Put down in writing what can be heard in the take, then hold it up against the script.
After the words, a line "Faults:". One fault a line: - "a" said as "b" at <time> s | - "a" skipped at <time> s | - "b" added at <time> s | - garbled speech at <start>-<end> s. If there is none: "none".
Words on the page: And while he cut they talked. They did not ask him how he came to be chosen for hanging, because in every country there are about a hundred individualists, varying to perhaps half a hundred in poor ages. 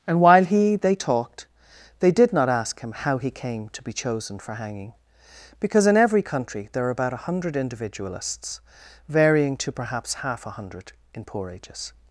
And while he they talked. They did not ask him how he came to be chosen for hanging, because in every country there are about a hundred individualists, varying to perhaps half a hundred in poor ages.
Faults:
- "cut" skipped at 0.8 s